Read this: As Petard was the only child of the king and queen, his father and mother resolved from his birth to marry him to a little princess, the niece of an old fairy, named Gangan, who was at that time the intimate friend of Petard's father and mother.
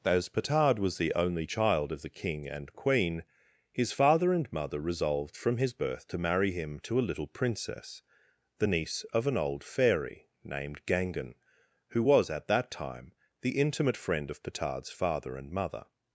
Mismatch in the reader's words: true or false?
false